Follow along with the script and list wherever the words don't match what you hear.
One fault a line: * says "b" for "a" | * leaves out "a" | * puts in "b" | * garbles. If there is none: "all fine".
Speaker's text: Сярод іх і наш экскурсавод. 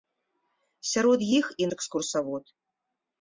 * leaves out "наш"